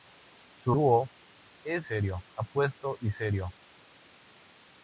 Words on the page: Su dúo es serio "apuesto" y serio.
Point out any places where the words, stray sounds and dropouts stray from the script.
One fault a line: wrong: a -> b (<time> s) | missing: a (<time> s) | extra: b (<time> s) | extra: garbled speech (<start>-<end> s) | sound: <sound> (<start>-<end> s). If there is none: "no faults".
no faults